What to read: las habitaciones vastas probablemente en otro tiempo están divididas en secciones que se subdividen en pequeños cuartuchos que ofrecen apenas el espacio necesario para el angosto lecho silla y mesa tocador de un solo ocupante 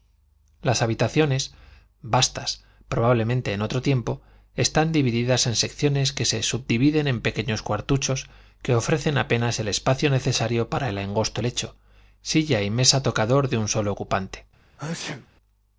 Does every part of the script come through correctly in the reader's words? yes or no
yes